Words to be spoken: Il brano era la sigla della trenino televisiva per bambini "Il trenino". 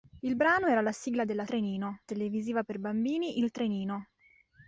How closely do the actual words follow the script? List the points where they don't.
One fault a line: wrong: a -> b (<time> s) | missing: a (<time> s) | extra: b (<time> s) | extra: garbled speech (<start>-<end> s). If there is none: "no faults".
no faults